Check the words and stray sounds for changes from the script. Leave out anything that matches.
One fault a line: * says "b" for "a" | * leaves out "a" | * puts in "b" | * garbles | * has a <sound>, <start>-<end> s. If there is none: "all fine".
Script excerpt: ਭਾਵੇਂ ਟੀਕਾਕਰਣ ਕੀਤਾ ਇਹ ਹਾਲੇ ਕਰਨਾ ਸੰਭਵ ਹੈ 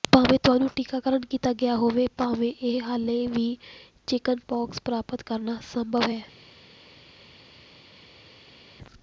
* puts in "ਤੁਹਾਨੂੰ"
* puts in "ਗਿਆ ਹੋਵੇ ਭਾਵੇਂ"
* puts in "ਵੀ ਚਿਕਨਪੌਕਸ ਪ੍ਰਾਪਤ"